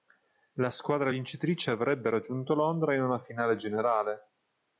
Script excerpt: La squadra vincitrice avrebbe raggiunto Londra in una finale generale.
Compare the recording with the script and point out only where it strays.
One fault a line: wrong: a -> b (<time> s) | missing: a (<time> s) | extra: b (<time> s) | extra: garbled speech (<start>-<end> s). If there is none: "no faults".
no faults